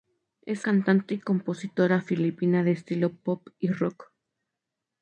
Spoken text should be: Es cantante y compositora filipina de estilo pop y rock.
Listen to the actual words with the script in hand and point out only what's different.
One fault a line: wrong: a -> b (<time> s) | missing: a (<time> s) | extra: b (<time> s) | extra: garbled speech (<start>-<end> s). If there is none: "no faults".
no faults